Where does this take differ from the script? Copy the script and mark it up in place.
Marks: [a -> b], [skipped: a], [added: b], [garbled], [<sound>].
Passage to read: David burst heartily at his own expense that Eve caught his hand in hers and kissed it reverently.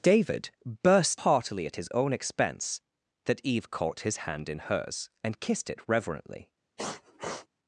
David burst heartily at his own expense that Eve caught his hand in hers and kissed it reverently. [sniff]